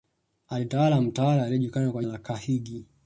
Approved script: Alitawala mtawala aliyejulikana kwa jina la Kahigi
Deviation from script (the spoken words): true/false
true